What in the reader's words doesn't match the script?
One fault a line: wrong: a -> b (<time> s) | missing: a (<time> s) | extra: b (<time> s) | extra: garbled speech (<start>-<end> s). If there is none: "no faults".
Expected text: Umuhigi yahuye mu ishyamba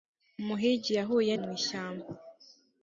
no faults